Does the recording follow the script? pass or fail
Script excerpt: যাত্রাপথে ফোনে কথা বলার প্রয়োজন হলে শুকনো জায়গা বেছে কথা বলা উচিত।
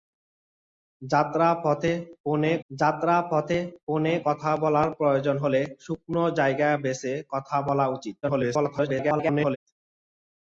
fail